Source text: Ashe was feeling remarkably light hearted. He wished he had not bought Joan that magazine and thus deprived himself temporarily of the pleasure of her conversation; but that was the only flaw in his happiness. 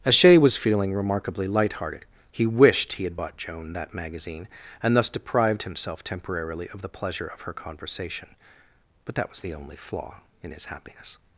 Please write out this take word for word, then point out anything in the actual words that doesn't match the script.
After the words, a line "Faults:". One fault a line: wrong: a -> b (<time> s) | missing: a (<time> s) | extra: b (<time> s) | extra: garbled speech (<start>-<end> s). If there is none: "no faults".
Ashe was feeling remarkably light hearted. He wished he had bought Joan that magazine and thus deprived himself temporarily of the pleasure of her conversation; but that was the only flaw in his happiness.
Faults:
missing: not (3.2 s)